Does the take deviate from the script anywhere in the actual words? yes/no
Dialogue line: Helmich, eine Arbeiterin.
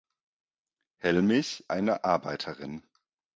no